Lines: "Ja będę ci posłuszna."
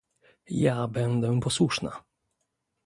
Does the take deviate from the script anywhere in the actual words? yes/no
yes